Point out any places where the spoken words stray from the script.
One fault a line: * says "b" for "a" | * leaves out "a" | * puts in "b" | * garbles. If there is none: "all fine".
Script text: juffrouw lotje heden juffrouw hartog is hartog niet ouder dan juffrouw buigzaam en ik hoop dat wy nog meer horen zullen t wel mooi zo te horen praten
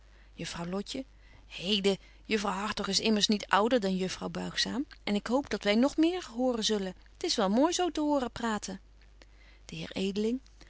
* says "immers" for "hartog"
* puts in "is"